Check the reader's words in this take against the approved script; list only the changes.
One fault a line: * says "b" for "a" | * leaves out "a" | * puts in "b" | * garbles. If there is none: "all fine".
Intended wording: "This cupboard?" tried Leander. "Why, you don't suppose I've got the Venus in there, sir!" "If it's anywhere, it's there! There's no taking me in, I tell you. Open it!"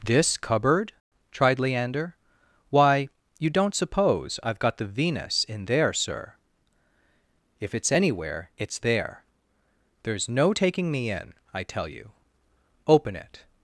all fine